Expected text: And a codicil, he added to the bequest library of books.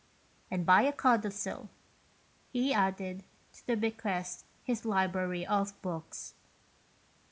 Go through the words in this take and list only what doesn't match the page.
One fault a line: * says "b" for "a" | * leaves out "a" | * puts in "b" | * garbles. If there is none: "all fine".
* puts in "by"
* puts in "his"